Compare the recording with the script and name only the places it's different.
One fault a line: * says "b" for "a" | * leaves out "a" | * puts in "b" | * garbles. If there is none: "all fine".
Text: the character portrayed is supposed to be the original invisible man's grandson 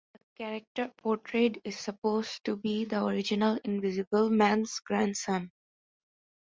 all fine